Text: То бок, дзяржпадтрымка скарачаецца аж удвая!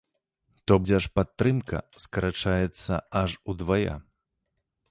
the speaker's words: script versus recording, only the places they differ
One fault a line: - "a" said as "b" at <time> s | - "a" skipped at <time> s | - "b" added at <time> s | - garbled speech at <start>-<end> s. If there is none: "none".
- "бок" skipped at 0.8 s